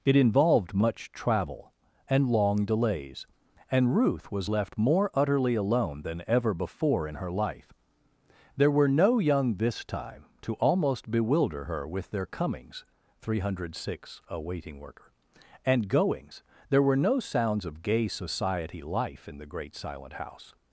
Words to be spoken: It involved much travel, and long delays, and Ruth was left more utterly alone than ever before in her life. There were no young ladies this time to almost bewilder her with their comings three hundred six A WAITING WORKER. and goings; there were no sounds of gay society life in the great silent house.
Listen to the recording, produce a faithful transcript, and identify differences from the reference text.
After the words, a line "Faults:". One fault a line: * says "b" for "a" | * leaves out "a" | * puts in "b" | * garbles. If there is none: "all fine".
It involved much travel, and long delays, and Ruth was left more utterly alone than ever before in her life. There were no young this time to almost bewilder her with their comings three hundred six A WAITING WORKER. and goings; there were no sounds of gay society life in the great silent house.
Faults:
* leaves out "ladies"